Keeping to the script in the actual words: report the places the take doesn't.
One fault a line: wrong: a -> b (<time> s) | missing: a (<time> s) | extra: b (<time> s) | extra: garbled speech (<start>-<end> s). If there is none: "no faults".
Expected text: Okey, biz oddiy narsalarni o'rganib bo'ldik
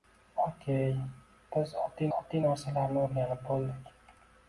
extra: oddiy (2.2 s)